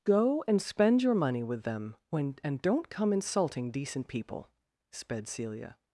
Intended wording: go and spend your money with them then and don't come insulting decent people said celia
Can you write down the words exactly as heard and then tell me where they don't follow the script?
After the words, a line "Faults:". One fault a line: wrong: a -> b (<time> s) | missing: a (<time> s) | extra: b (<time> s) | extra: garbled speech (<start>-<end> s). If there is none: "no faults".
go and spend your money with them when and don't come insulting decent people sped celia
Faults:
wrong: then -> when (2.1 s)
wrong: said -> sped (4.9 s)